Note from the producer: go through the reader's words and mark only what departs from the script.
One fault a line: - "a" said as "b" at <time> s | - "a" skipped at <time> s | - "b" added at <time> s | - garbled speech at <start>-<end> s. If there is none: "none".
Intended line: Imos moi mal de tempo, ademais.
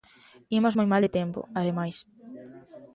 none